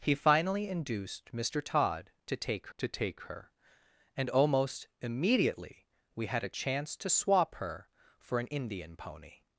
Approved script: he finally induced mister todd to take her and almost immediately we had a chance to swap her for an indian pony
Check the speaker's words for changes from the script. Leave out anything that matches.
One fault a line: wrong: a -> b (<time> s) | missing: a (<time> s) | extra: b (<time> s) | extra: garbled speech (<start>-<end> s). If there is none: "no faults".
extra: to take (2.8 s)